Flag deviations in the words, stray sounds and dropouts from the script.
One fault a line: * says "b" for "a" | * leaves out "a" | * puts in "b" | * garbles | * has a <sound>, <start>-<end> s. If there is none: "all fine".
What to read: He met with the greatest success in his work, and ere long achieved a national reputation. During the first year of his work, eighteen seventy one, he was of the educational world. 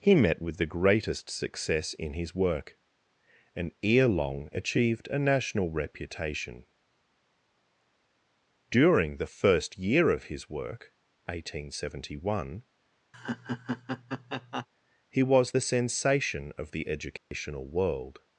* has a laugh, 13.1-14.7 s
* puts in "the sensation"
* has a dropout, 17.2-17.3 s